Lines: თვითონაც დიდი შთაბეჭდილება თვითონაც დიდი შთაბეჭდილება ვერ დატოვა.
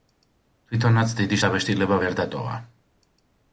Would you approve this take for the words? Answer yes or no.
no